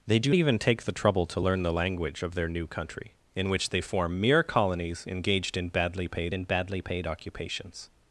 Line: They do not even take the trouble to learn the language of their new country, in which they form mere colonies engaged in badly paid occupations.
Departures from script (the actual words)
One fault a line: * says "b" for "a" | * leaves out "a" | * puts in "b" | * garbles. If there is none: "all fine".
* leaves out "not"
* puts in "in badly paid"